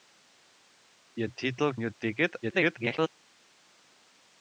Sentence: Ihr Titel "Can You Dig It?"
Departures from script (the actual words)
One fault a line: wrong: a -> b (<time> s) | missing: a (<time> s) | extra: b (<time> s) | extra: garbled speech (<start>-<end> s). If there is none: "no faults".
missing: Can (1.7 s)
extra: garbled speech (2.4-3.1 s)